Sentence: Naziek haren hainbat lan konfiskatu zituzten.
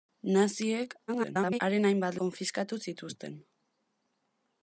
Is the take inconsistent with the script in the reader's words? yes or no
yes